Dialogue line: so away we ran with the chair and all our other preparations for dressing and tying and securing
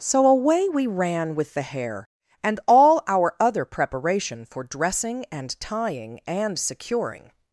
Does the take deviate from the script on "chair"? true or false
true